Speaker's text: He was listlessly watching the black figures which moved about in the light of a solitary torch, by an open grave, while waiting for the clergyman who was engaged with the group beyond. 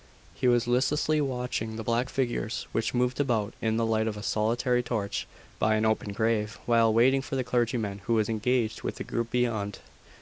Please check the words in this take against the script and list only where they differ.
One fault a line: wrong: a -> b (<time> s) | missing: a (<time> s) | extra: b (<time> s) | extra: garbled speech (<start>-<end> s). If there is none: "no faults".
no faults